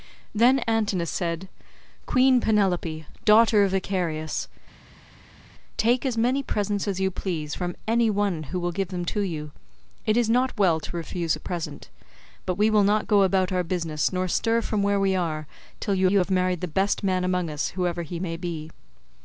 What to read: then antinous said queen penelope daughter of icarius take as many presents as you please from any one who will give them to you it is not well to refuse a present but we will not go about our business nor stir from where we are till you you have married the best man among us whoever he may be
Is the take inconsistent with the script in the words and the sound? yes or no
no